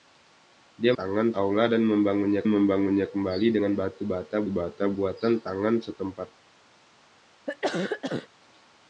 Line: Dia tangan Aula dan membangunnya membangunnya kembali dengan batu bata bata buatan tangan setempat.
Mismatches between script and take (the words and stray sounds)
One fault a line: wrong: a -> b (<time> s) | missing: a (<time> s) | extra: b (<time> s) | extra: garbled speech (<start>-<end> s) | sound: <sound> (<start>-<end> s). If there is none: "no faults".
sound: cough (7.5-8.3 s)